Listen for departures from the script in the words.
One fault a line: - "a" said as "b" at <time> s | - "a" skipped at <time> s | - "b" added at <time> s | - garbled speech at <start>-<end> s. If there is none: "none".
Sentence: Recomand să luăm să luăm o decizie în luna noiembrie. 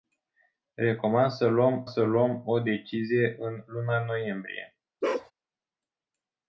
none